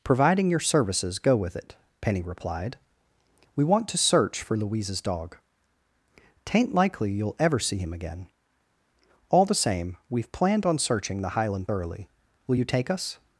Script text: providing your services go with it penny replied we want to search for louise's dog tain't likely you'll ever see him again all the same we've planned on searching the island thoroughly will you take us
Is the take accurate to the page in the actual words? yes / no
no